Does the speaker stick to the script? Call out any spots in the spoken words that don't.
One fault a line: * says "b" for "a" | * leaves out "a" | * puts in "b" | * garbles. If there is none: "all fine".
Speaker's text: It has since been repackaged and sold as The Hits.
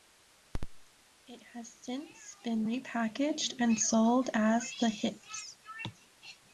all fine